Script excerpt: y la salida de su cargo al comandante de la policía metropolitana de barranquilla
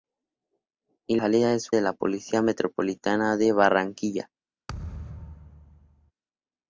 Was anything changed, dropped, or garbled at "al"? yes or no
yes